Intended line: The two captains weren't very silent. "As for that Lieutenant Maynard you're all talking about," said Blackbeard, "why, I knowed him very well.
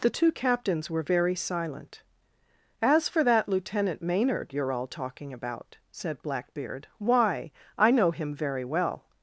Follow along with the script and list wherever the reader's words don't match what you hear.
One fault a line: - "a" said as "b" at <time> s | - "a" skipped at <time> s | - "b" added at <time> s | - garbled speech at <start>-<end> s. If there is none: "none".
- "weren't" said as "were" at 0.9 s
- "knowed" said as "know" at 7.9 s